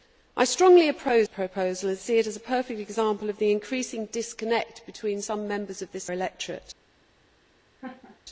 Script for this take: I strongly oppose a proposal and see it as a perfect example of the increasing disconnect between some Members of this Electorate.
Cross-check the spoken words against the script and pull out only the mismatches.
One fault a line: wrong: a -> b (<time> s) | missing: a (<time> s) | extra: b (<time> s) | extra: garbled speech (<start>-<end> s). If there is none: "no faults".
no faults